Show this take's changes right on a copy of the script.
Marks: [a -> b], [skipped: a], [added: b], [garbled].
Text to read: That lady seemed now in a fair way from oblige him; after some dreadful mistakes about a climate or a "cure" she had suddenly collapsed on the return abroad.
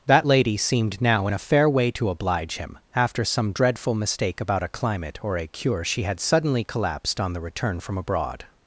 That lady seemed now in a fair way [from -> to] oblige him; after some dreadful [mistakes -> mistake] about a climate or a "cure" she had suddenly collapsed on the return [added: from] abroad.